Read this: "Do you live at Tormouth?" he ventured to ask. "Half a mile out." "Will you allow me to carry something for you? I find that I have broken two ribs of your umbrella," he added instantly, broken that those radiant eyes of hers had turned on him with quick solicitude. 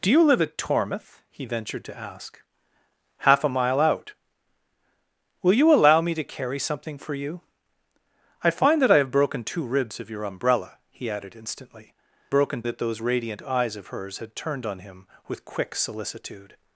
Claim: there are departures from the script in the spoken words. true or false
false